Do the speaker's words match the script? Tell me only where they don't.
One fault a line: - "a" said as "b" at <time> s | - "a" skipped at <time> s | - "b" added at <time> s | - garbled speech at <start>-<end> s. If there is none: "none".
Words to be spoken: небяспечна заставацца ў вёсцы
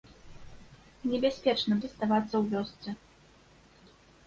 none